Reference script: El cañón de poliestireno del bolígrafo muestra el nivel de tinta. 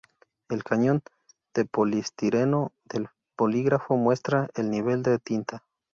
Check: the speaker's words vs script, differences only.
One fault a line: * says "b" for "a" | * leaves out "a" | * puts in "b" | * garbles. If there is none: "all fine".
all fine